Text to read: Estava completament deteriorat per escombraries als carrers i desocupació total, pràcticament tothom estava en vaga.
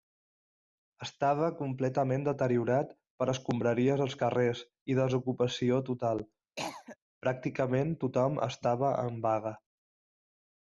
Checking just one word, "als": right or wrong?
right